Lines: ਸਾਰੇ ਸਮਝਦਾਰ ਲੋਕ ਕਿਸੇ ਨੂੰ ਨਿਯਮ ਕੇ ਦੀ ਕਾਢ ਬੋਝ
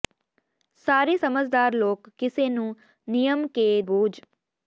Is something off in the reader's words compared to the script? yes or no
yes